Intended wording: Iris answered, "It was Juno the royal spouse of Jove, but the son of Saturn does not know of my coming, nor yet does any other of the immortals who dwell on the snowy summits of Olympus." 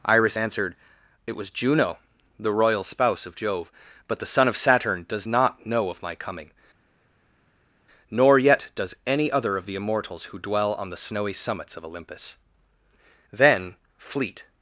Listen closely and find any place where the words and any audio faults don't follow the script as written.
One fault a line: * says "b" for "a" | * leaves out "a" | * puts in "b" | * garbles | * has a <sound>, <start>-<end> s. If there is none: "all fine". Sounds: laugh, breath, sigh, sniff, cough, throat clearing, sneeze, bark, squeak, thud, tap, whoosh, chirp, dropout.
* puts in "Then fleet"